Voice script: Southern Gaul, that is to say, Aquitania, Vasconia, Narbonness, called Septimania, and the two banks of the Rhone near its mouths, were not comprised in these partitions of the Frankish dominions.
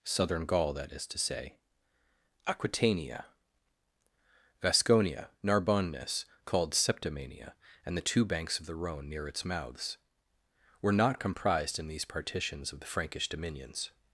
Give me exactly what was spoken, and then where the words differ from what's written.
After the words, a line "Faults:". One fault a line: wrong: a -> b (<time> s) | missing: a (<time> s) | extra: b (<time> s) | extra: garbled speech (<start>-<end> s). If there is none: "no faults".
Southern Gaul, that is to say, Aquitania, Vasconia, Narbonness, called Septimania, and the two banks of the Rhone near its mouths, were not comprised in these partitions of the Frankish dominions.
Faults:
no faults